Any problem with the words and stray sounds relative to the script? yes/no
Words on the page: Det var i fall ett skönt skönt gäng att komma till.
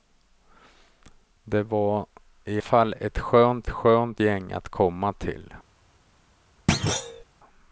yes